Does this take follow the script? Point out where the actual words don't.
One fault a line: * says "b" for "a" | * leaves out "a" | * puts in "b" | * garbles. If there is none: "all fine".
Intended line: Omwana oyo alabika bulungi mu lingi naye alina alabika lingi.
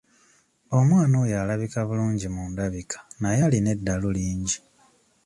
* says "ndabika" for "lingi"
* says "eddalu" for "alabika"